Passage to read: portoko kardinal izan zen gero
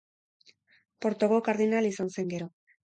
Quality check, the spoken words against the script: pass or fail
pass